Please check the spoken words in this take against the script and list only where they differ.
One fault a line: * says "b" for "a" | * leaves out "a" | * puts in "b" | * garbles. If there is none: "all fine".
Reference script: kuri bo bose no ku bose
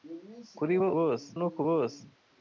all fine